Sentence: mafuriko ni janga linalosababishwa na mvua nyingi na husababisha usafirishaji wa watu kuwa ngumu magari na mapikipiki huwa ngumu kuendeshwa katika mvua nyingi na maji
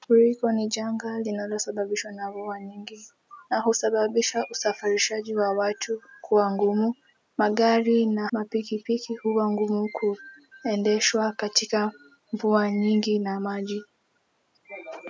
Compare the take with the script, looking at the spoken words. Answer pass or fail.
pass